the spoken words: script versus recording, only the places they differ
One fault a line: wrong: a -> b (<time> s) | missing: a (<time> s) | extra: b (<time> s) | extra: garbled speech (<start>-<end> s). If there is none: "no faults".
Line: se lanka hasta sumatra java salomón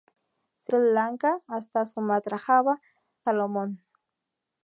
no faults